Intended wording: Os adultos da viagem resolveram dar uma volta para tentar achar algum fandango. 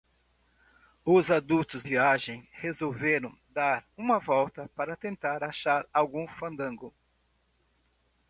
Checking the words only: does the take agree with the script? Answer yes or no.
no